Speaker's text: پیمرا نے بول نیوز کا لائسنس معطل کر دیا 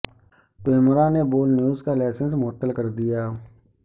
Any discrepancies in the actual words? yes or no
no